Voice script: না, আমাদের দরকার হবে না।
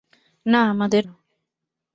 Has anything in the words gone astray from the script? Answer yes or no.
yes